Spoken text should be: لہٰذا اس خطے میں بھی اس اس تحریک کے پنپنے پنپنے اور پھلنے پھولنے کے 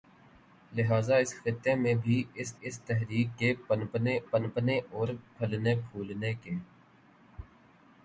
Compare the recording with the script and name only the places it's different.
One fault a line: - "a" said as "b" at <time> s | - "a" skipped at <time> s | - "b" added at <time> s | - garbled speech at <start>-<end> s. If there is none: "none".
none